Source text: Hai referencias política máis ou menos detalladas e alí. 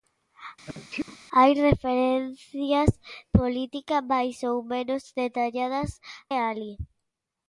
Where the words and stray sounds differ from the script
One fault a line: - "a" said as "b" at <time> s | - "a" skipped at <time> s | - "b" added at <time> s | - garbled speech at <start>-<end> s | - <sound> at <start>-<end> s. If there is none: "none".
- sneeze at 0.7-1.2 s